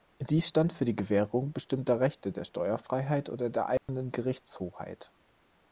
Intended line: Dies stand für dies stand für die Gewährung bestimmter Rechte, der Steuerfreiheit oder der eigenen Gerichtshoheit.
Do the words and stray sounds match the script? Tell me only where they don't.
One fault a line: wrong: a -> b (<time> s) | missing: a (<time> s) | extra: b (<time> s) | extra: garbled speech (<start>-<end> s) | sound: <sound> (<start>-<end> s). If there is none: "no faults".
missing: dies stand für (0.8 s)
sound: dropout (3.8-3.9 s)